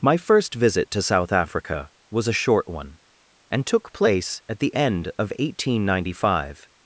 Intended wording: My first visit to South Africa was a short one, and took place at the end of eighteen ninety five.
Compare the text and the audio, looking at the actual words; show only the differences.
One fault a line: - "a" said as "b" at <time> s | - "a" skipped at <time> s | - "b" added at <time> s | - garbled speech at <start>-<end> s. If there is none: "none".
none